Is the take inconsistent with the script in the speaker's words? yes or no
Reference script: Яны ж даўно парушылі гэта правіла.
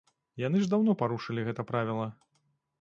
no